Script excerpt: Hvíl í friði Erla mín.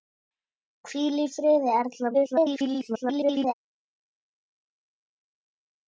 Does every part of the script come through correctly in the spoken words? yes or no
no